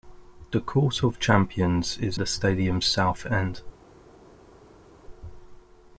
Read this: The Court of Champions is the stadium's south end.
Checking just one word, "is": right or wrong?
right